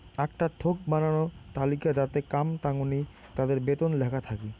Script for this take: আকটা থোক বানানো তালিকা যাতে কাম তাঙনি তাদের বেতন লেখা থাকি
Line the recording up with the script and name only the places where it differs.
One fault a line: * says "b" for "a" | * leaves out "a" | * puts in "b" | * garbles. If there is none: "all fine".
all fine